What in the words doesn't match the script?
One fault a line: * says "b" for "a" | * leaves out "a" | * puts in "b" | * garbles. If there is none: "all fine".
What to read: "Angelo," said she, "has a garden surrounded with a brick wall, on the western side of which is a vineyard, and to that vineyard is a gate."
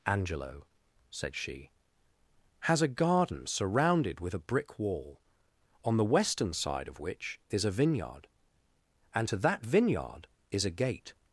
all fine